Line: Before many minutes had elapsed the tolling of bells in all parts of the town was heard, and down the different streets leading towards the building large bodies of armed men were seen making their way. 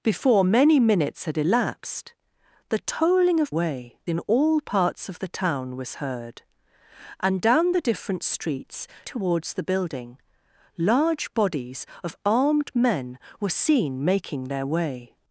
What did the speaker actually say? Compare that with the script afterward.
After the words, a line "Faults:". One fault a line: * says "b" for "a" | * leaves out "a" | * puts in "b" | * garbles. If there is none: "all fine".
Before many minutes had elapsed the tolling of way in all parts of the town was heard, and down the different streets towards the building large bodies of armed men were seen making their way.
Faults:
* says "way" for "bells"
* leaves out "leading"